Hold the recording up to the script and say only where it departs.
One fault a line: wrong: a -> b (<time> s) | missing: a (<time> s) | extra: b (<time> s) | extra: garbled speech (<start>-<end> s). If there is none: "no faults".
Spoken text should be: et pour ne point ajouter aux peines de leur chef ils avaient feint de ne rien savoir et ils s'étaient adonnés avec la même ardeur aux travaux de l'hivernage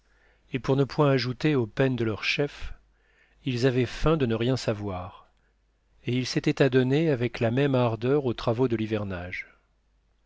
no faults